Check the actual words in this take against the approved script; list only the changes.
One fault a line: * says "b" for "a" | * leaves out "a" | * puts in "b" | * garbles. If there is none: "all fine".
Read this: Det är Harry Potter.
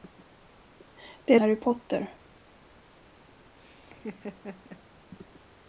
all fine